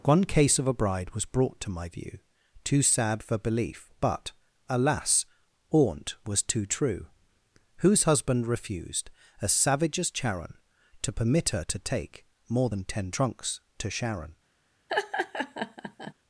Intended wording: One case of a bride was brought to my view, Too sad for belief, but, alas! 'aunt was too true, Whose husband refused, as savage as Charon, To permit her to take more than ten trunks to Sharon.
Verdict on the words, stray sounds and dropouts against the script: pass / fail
fail